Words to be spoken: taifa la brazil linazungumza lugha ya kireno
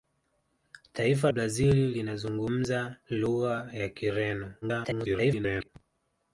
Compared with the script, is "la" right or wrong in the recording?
wrong